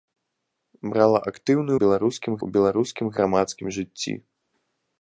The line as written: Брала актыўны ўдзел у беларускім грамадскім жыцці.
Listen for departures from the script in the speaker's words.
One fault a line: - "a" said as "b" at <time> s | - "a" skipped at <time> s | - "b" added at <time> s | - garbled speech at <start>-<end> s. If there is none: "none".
- "ўдзел" said as "беларускім" at 1.8 s